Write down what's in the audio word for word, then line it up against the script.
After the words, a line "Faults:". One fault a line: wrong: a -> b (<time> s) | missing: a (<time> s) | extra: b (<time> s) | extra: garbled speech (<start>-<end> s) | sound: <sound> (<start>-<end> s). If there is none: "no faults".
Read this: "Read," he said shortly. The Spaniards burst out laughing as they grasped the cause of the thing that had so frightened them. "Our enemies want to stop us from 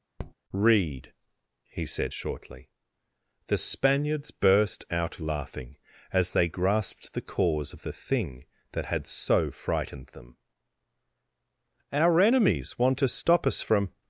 "Read," he said shortly. The Spaniards burst out laughing as they grasped the cause of the thing that had so frightened them. "Our enemies want to stop us from
Faults:
sound: tap (0.2-0.3 s)